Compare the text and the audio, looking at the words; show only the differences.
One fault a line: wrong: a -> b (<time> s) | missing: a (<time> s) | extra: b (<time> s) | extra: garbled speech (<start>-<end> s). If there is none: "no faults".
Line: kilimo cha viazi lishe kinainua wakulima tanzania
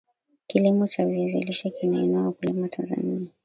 no faults